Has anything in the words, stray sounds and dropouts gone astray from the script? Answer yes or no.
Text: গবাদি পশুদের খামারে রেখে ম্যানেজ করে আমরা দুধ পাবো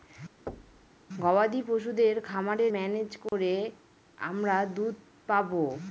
yes